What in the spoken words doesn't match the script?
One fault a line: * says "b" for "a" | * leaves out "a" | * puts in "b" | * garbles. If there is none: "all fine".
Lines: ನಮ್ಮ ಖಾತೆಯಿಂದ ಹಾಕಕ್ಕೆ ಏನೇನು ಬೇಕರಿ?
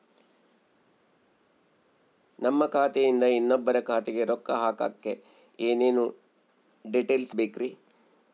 * puts in "ಇನ್ನೊಬ್ಬರ ಖಾತೆಗೆ ರೊಕ್ಕ"
* puts in "ಡೇಟೇಲ್ಸ್"